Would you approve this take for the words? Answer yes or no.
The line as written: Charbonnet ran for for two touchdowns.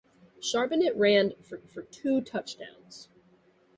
yes